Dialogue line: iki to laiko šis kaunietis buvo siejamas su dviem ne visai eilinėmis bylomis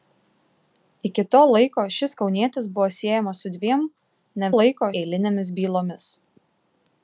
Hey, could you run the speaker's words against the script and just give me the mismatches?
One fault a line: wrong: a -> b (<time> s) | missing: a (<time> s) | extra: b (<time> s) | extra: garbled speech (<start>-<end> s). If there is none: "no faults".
wrong: visai -> laiko (4.5 s)